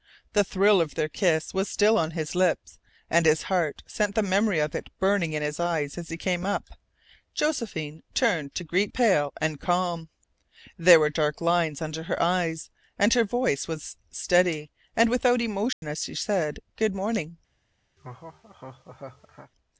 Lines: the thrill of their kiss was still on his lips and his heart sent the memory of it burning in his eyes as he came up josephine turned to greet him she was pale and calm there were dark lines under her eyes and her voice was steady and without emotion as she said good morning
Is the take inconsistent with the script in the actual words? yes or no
yes